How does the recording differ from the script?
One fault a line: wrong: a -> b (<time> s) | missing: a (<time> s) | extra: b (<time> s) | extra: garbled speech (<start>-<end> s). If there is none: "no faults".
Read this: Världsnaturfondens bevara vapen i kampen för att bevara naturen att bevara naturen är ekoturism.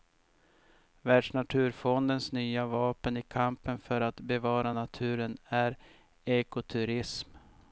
wrong: bevara -> nya (2.3 s)
missing: att bevara naturen (5.4 s)